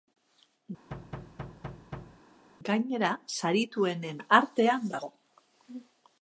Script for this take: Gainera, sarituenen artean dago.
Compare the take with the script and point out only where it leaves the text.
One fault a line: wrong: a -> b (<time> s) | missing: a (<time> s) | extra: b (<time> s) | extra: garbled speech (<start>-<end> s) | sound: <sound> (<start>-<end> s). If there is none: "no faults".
sound: thud (0.9-2.2 s)